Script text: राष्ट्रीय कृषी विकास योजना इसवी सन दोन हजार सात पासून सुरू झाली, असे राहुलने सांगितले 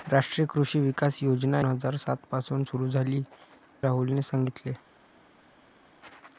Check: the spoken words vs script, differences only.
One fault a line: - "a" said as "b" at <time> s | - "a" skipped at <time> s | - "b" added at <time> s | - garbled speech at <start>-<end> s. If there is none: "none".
- "इसवी सन दोन" skipped at 1.6 s
- "असे" skipped at 3.2 s